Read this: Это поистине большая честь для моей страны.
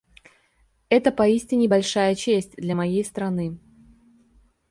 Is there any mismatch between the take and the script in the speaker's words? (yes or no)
no